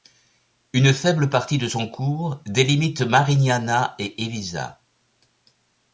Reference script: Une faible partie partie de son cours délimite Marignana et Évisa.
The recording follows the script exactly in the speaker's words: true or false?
false